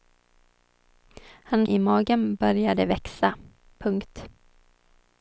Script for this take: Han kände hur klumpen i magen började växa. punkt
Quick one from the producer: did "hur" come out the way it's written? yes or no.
no